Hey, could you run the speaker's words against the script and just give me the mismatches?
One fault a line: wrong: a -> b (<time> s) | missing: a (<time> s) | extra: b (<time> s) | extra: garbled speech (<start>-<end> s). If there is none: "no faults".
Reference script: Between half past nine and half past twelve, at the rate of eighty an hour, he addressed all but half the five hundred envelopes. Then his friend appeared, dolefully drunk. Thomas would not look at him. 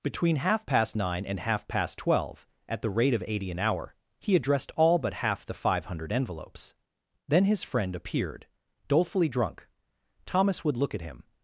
missing: not (10.8 s)